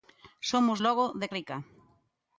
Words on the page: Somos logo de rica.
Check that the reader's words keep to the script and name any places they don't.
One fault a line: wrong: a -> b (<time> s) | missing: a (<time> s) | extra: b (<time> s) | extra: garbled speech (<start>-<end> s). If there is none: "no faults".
no faults